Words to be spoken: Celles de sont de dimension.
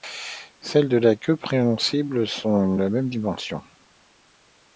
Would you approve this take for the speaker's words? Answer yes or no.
no